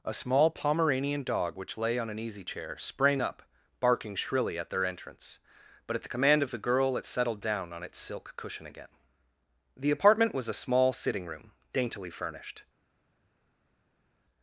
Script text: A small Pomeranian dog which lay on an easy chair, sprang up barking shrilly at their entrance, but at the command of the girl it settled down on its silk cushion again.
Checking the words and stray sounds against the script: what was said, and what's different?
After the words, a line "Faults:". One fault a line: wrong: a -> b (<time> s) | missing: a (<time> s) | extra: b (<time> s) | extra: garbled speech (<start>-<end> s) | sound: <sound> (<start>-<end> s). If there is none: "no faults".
A small Pomeranian dog which lay on an easy chair, sprang up barking shrilly at their entrance, but at the command of the girl it settled down on its silk cushion again. The apartment was a small sitting room, daintily furnished
Faults:
extra: The apartment was a small sitting room daintily furnished (9.8 s)